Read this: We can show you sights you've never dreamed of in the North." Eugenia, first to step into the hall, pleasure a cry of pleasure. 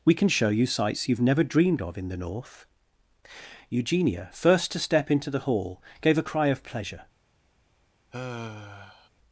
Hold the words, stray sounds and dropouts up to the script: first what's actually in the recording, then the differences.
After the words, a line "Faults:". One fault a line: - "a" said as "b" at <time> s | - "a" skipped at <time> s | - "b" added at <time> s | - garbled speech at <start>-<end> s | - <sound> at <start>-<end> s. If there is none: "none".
We can show you sights you've never dreamed of in the North." Eugenia, first to step into the hall, gave a cry of pleasure.
Faults:
- "pleasure" said as "gave" at 6.0 s
- sigh at 8.1-9.1 s